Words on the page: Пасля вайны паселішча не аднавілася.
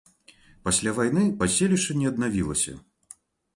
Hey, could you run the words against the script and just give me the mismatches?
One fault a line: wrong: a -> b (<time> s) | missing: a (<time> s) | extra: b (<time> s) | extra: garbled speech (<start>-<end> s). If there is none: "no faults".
no faults